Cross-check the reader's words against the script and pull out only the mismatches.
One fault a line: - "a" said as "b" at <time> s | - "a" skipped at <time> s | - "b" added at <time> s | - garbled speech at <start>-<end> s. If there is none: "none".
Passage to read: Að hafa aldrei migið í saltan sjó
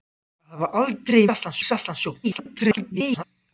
- "migið" said as "saltan" at 1.3 s
- garbled speech at 2.2-3.2 s